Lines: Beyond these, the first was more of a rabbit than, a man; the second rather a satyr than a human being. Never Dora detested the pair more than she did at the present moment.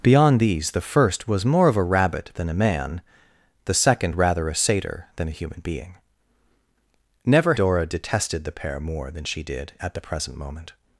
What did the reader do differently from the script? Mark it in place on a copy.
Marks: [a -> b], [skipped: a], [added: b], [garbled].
Beyond these, the first was more of a rabbit than, a man; the second rather a satyr than a human being. Never Dora detested the pair more than she did at the present moment.